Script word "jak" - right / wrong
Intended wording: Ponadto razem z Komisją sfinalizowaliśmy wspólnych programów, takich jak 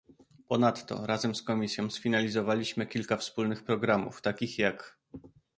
right